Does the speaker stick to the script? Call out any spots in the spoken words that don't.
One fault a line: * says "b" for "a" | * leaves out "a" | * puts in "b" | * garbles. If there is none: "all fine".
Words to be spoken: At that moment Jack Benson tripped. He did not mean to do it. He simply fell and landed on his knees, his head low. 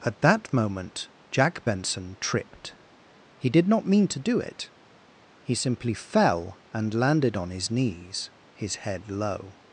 all fine